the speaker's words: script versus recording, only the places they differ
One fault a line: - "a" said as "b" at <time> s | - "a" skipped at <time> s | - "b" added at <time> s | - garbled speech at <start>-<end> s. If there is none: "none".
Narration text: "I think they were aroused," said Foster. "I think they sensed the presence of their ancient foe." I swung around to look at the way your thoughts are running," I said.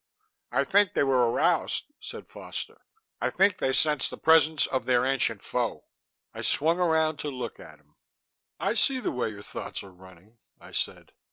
- "him I see" added at 7.8 s